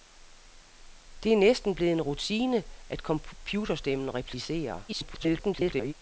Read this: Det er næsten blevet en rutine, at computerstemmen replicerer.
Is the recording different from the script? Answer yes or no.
yes